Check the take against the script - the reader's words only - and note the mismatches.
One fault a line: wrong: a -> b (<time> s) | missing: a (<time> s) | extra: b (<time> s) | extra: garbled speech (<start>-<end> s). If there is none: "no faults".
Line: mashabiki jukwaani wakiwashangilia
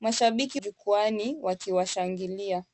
no faults